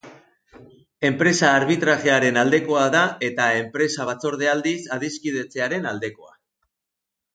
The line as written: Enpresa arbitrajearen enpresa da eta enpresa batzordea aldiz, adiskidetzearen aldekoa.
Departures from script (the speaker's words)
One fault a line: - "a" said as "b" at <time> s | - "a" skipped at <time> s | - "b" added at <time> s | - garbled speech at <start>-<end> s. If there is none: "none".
- "enpresa" said as "aldekoa" at 2.4 s